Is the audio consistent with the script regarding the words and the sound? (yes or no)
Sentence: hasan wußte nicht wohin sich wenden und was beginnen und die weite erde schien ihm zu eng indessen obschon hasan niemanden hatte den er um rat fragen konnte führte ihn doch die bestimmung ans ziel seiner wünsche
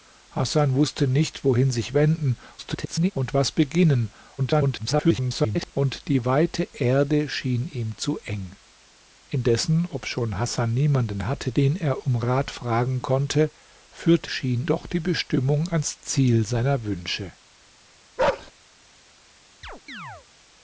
no